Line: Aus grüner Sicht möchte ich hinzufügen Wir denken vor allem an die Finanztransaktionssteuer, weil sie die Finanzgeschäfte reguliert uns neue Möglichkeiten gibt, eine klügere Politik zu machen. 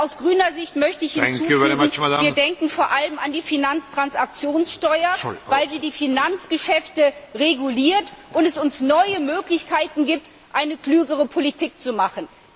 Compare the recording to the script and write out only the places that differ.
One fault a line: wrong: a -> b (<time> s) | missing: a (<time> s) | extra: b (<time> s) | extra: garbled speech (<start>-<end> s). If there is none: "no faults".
extra: und (8.3 s)